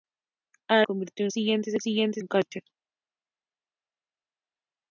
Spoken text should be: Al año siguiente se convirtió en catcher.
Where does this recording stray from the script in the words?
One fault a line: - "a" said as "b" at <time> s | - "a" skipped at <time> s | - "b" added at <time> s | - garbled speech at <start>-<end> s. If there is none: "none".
- "año" said as "convirtió" at 0.8 s
- "convirtió" said as "siguiente" at 1.8 s